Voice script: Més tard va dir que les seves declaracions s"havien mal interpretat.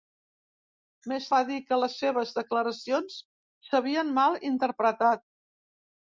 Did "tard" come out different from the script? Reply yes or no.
yes